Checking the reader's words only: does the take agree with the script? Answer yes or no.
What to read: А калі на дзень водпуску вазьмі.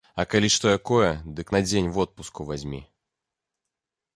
no